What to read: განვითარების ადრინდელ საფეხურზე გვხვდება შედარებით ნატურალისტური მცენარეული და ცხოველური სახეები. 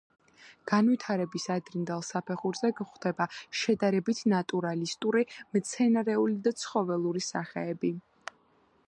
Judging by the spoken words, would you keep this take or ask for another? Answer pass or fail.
pass